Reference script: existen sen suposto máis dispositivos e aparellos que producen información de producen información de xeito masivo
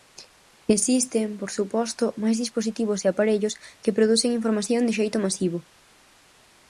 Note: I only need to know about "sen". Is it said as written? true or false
false